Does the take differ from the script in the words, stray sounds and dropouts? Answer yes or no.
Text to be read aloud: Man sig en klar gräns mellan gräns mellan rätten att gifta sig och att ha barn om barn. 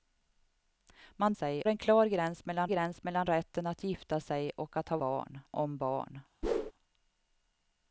yes